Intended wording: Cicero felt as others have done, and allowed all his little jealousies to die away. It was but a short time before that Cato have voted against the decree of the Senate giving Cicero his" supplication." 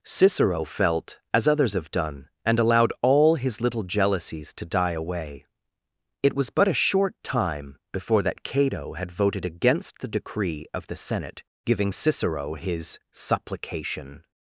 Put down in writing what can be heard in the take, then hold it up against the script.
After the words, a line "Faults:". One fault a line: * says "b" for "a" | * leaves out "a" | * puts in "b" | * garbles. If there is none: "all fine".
Cicero felt as others have done, and allowed all his little jealousies to die away. It was but a short time before that Cato had voted against the decree of the Senate giving Cicero his" supplication."
Faults:
* says "had" for "have"